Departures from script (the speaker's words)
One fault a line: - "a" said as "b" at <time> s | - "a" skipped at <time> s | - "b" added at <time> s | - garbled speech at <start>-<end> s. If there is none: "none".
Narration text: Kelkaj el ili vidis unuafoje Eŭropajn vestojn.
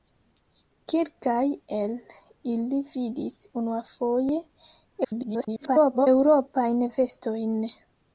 - garbled speech at 5.0-6.1 s